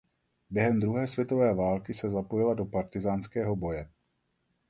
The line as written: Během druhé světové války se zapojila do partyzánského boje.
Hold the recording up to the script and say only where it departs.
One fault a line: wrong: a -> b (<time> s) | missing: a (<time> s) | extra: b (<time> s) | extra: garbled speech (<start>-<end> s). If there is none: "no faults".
no faults